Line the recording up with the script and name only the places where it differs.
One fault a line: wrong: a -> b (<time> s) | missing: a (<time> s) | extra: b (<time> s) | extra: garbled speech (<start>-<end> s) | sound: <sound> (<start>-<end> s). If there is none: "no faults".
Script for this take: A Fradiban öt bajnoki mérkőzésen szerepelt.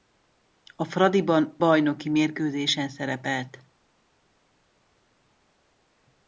missing: öt (1.6 s)